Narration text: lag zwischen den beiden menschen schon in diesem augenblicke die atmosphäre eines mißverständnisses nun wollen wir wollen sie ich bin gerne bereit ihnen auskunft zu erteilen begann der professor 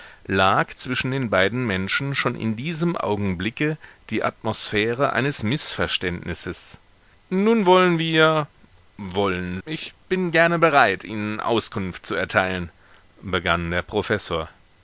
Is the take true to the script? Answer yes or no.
no